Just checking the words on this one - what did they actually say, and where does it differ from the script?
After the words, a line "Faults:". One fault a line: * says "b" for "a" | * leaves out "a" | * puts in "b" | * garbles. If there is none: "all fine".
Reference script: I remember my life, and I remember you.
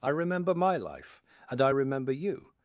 I remember my life, and I remember you.
Faults:
all fine